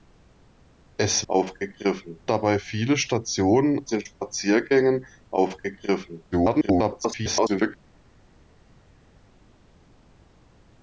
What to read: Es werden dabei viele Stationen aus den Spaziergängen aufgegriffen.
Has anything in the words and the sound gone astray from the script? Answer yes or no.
yes